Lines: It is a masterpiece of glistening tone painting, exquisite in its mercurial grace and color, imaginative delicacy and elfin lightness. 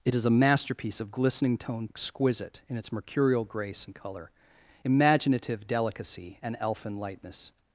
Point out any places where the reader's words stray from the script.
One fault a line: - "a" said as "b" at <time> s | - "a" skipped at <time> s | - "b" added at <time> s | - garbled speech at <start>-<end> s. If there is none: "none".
- "painting" skipped at 1.9 s